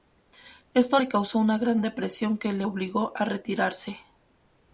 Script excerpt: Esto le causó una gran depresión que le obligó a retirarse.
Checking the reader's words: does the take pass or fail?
pass